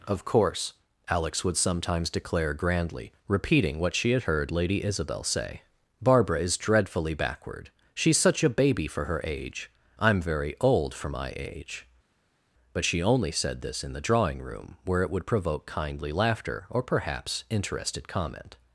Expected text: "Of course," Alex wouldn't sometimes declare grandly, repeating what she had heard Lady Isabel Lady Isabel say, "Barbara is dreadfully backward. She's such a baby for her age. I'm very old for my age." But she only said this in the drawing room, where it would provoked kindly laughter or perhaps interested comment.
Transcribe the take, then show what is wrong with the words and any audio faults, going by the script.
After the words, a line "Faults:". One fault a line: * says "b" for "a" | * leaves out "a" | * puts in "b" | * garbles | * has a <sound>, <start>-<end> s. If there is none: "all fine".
"Of course," Alex would sometimes declare grandly, repeating what she had heard Lady Isabel say, "Barbara is dreadfully backward. She's such a baby for her age. I'm very old for my age." But she only said this in the drawing room, where it would provoke kindly laughter or perhaps interested comment.
Faults:
* says "would" for "wouldn't"
* leaves out "Lady Isabel"
* says "provoke" for "provoked"